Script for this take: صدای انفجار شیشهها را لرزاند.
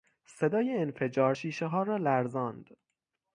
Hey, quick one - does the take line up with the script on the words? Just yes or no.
yes